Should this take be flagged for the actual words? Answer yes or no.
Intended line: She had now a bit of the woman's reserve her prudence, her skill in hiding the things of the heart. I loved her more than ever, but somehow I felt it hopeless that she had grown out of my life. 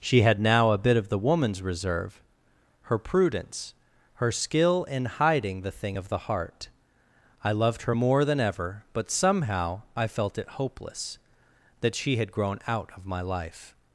yes